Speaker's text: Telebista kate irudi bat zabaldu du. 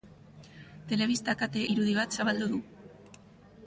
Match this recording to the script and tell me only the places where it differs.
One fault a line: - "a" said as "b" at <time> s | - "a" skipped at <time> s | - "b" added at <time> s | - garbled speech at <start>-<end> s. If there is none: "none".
none